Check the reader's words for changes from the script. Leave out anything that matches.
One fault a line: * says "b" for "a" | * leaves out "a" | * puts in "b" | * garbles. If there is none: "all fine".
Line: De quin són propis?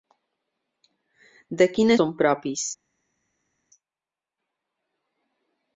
all fine